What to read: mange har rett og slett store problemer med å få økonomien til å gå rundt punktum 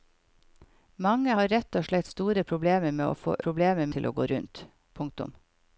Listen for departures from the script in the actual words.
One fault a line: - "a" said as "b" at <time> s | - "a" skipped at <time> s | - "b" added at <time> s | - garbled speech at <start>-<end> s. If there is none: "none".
- "økonomien" said as "problemer" at 3.5 s